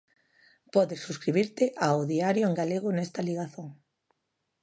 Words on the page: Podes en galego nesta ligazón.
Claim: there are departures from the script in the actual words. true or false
true